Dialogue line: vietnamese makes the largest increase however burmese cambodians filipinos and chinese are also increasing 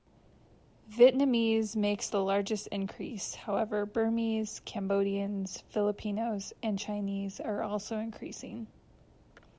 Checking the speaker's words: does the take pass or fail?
pass